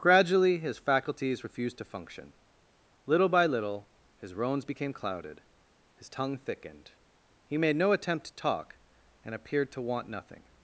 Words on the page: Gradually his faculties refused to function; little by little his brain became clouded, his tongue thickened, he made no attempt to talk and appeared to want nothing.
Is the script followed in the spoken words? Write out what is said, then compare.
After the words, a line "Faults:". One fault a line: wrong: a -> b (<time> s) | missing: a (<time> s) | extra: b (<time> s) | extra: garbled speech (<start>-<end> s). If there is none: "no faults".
Gradually his faculties refused to function; little by little his roans became clouded, his tongue thickened, he made no attempt to talk and appeared to want nothing.
Faults:
wrong: brain -> roans (4.3 s)